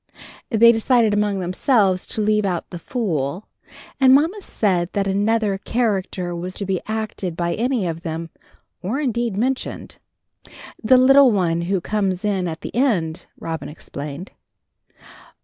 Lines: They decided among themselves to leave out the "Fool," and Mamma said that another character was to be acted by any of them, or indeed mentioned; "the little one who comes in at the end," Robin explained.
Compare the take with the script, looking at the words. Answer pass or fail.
pass